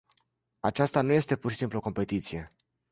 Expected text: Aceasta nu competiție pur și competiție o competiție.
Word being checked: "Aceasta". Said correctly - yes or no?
yes